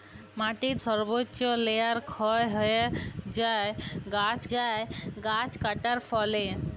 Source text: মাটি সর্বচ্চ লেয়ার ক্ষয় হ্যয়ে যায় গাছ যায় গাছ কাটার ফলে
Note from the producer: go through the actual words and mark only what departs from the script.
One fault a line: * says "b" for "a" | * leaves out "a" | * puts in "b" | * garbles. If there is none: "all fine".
all fine